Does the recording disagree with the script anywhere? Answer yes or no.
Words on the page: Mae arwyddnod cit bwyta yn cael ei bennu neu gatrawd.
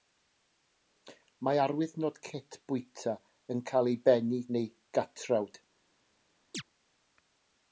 no